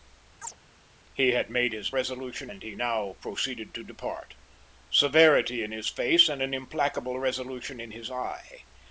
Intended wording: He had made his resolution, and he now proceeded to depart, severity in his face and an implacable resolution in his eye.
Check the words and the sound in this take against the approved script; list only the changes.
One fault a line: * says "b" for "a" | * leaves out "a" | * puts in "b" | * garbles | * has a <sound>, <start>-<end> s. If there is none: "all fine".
* has a chirp, 0.4-0.6 s